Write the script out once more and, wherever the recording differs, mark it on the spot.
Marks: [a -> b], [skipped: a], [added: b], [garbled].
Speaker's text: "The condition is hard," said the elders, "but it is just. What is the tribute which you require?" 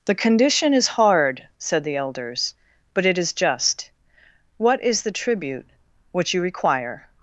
"The condition is hard," said the elders, "but it is just. What is the tribute which you require?"